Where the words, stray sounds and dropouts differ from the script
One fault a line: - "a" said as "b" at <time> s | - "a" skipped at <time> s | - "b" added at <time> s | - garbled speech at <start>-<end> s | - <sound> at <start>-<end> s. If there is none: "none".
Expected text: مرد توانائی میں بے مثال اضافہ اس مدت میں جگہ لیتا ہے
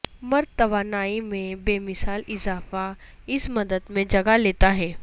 none